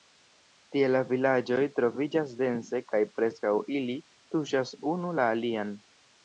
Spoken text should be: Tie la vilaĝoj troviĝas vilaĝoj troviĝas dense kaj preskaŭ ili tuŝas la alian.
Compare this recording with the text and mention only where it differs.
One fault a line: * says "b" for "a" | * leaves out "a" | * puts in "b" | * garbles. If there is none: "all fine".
* leaves out "vilaĝoj troviĝas"
* puts in "unu"